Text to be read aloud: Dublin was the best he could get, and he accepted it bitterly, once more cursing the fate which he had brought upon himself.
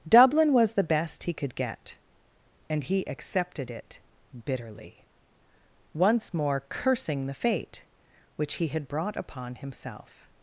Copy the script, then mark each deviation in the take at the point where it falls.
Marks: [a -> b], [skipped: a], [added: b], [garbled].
Dublin was the best he could get, and he accepted it bitterly, once more cursing the fate which he had brought upon himself.